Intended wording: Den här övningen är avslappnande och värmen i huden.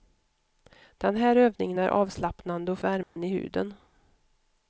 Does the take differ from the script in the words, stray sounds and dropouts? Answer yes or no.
yes